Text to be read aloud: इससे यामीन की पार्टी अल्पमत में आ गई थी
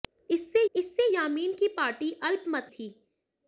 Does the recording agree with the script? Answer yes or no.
no